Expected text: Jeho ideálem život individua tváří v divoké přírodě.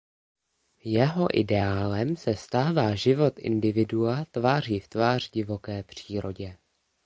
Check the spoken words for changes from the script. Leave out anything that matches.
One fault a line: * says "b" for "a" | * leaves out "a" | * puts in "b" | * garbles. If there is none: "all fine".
* puts in "se stává"
* puts in "tvář"